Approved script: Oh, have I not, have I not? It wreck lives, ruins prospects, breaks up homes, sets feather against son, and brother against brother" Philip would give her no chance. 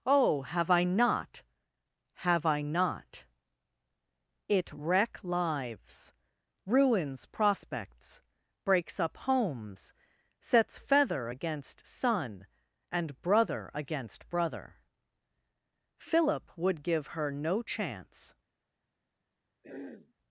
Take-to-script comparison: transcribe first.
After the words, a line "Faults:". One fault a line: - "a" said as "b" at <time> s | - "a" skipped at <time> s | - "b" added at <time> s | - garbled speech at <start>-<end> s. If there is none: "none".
Oh, have I not, have I not? It wreck lives, ruins prospects, breaks up homes, sets feather against son, and brother against brother" Philip would give her no chance.
Faults:
none